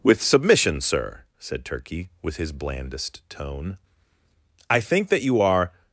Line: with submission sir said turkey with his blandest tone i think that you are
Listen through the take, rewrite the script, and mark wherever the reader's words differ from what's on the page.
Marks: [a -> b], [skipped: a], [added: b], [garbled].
with submission sir said turkey with his blandest tone i think that you are